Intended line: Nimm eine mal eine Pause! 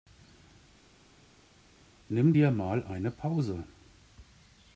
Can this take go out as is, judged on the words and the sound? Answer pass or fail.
fail